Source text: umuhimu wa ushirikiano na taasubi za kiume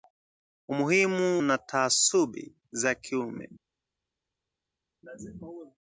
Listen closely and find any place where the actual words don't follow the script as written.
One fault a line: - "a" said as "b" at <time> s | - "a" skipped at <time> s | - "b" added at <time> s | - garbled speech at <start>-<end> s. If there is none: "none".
- "wa ushirikiano" skipped at 1.4 s